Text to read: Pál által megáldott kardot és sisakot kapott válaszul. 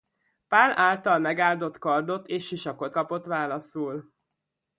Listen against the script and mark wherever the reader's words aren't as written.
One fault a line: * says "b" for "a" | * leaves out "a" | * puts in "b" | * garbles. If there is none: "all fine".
all fine